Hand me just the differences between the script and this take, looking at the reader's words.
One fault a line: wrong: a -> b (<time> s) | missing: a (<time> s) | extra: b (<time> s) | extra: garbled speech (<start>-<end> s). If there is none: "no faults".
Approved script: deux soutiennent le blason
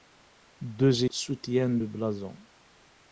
no faults